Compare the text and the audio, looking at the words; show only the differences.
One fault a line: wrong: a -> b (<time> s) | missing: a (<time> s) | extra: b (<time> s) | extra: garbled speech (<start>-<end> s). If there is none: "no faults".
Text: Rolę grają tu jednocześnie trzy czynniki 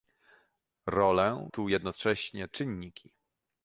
missing: grają (1.5 s)
missing: trzy (2.5 s)